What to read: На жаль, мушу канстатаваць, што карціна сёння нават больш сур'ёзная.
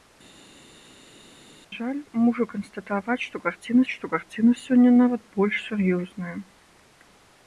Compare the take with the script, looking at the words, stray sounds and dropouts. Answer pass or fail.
fail